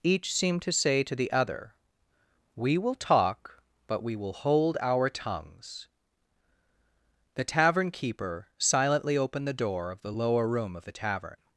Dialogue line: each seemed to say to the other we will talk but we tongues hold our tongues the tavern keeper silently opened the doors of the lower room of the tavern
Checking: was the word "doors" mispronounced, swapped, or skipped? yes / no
yes